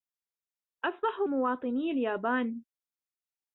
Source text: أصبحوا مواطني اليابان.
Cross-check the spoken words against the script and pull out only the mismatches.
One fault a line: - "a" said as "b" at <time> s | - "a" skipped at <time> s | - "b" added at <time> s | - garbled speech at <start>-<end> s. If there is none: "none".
none